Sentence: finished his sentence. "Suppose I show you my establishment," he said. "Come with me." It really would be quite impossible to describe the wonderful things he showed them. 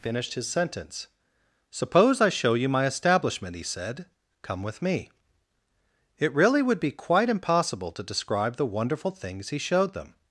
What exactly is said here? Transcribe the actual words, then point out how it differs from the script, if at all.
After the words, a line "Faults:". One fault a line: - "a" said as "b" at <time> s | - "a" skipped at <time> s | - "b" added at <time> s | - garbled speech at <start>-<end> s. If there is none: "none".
finished his sentence. "Suppose I show you my establishment," he said. "Come with me." It really would be quite impossible to describe the wonderful things he showed them.
Faults:
none